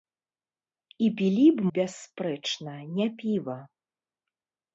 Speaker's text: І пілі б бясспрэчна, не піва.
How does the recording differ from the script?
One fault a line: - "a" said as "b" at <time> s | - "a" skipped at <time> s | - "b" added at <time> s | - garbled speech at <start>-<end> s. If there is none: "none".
none